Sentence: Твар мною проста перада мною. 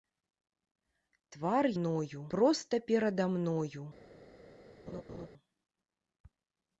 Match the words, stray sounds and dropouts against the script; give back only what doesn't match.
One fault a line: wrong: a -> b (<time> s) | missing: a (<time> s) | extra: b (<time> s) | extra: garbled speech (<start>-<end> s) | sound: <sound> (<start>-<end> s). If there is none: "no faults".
sound: laugh (4.9-5.3 s)